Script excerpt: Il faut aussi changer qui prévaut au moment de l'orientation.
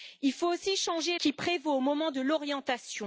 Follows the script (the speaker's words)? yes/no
yes